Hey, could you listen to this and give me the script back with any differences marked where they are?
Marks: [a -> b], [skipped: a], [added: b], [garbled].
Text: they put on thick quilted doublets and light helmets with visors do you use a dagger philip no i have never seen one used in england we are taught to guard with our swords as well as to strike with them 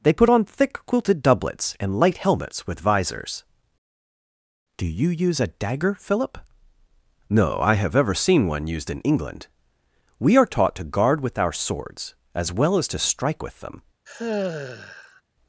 they put on thick quilted doublets and light helmets with visors do you use a dagger philip no i have [never -> ever] seen one used in england we are taught to guard with our swords as well as to strike with them